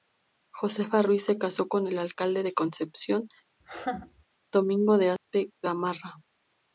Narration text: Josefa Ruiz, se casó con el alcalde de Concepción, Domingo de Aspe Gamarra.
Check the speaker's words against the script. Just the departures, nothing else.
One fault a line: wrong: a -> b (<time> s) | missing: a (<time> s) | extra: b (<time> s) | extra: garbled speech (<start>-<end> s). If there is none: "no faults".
no faults